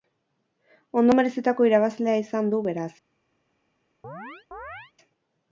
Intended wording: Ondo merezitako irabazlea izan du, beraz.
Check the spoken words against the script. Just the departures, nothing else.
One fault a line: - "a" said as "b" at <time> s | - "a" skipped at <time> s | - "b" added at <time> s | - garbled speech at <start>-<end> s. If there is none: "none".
none